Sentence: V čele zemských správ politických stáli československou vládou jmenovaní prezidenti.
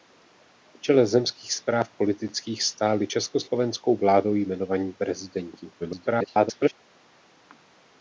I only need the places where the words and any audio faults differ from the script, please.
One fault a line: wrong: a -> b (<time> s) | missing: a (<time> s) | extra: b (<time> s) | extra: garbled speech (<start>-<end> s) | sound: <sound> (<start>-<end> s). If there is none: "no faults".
extra: garbled speech (5.8-6.7 s)